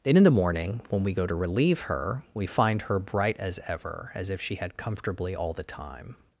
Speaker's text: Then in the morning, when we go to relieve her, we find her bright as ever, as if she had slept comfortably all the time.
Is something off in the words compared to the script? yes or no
yes